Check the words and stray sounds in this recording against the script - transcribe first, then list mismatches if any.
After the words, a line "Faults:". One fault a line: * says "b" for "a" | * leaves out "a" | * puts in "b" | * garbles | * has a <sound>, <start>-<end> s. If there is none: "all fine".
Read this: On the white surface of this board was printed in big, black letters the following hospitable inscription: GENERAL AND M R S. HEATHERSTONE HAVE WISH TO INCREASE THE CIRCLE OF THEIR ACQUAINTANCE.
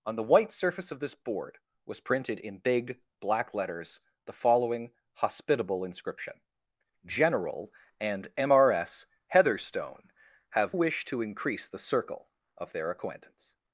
On the white surface of this board was printed in big, black letters the following hospitable inscription: GENERAL AND M R S. HEATHERSTONE HAVE WISH TO INCREASE THE CIRCLE OF THEIR ACQUAINTANCE.
Faults:
all fine